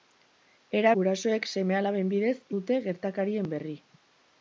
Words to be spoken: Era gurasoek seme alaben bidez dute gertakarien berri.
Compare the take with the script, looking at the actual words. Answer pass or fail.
pass